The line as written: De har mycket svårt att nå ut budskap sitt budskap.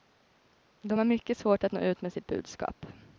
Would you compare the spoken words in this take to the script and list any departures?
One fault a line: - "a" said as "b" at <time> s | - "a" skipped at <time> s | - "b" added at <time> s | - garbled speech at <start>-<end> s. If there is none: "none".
- "budskap" said as "med" at 2.0 s